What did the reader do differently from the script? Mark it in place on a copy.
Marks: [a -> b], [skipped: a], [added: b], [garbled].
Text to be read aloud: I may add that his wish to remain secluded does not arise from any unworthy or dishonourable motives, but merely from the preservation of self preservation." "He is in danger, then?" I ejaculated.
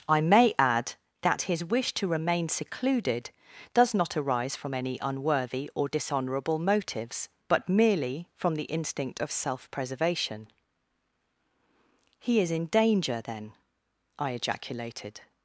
I may add that his wish to remain secluded does not arise from any unworthy or dishonourable motives, but merely from the [preservation -> instinct] of self preservation." "He is in danger, then?" I ejaculated.